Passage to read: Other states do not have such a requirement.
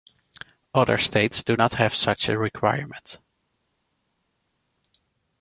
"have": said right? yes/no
yes